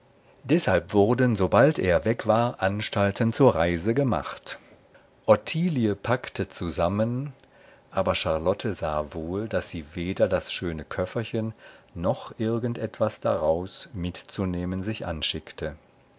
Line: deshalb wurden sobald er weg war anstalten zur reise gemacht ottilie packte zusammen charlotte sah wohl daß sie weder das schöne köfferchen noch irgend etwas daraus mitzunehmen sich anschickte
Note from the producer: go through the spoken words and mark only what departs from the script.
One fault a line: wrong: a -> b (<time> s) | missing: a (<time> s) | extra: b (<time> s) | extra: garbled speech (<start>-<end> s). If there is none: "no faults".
extra: aber (7.9 s)